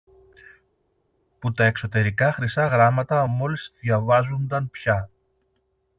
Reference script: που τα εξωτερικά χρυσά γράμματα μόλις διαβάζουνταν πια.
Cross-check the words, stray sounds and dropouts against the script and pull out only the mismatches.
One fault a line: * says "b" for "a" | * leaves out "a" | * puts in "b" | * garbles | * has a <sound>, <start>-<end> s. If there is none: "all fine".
all fine